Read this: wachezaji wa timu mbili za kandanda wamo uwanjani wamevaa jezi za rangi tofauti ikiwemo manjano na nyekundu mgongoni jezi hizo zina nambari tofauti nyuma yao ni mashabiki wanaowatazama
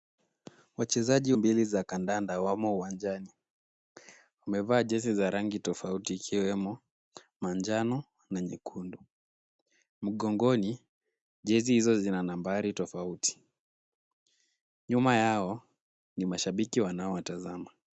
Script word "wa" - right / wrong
wrong